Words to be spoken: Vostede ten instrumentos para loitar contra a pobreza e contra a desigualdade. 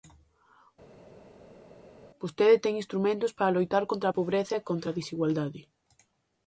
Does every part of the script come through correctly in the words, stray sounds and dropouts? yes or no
yes